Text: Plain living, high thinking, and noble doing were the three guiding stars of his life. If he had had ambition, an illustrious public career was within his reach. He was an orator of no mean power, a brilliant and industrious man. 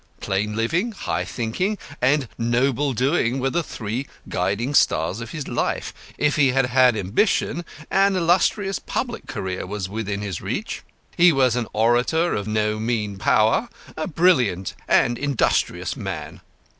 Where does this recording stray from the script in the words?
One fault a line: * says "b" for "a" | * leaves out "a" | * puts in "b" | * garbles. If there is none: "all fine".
all fine